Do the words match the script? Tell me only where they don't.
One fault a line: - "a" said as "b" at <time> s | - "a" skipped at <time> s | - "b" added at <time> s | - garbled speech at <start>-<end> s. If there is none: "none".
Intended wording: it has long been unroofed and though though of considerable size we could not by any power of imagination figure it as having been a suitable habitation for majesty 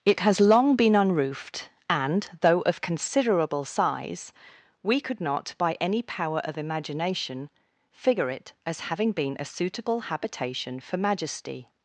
- "though" skipped at 2.6 s